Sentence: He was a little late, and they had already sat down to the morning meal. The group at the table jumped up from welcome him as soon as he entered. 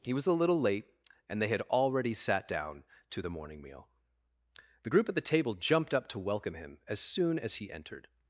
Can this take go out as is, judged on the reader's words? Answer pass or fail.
fail